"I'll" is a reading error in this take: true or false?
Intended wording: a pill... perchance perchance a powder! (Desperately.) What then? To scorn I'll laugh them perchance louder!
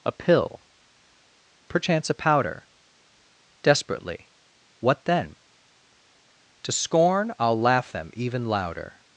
false